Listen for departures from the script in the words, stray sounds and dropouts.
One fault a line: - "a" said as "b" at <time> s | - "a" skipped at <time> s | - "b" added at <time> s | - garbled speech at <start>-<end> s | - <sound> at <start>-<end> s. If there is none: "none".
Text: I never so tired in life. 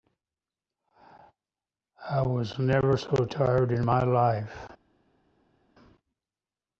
- "was" added at 2.2 s
- "my" added at 3.9 s